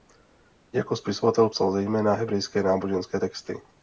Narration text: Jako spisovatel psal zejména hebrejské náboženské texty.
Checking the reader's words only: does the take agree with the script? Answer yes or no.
yes